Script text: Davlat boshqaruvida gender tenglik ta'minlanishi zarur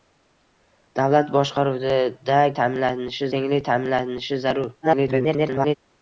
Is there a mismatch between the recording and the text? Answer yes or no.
yes